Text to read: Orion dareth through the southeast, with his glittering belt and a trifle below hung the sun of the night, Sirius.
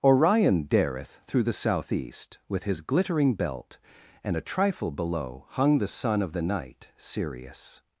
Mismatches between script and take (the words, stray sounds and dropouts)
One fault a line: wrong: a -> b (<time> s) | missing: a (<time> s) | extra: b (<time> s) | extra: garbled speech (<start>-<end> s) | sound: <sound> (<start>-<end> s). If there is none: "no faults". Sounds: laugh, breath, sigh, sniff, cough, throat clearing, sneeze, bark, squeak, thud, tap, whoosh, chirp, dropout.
no faults